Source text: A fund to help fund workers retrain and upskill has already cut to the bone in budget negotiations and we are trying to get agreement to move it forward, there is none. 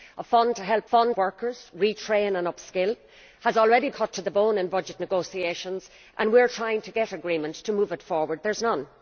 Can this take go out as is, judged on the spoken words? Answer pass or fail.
pass